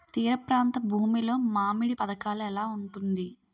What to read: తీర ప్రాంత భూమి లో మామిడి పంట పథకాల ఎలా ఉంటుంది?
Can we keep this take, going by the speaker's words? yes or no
no